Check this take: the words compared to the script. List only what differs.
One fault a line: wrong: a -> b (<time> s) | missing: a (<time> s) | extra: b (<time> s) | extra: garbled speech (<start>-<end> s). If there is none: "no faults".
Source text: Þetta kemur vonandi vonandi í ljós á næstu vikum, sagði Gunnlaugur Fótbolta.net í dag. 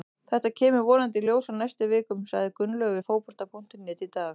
missing: vonandi (1.2 s)
extra: við (3.0 s)